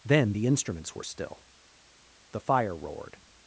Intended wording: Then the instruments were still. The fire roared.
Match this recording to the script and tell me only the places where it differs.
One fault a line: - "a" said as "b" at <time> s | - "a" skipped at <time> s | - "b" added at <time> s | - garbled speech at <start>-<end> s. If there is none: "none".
none